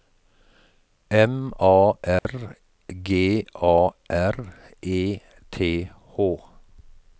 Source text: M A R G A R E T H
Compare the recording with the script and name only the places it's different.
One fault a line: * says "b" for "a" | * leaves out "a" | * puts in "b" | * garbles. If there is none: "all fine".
all fine